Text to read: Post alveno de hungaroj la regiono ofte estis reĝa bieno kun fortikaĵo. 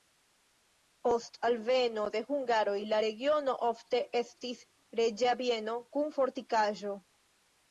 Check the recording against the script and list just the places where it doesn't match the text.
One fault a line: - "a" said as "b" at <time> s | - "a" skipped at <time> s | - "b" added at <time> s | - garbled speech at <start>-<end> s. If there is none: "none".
none